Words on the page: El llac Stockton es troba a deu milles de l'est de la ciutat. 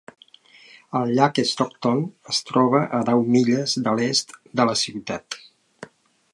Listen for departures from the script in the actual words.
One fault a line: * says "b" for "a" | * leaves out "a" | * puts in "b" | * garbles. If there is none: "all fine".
all fine